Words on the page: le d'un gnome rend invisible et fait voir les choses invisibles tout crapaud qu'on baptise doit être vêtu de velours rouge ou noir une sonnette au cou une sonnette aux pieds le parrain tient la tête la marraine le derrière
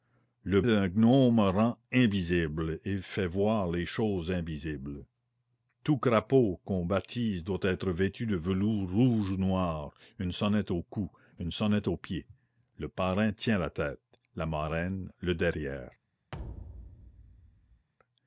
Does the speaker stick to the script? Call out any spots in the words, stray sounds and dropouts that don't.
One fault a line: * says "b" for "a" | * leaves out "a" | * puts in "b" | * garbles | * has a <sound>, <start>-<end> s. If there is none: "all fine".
* has a thud, 16.3-17.9 s